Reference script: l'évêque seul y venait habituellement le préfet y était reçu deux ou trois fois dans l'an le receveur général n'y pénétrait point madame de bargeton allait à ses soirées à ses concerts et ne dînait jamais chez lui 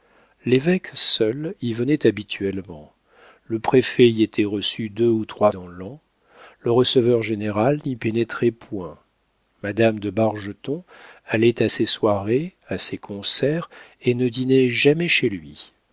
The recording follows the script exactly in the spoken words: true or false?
false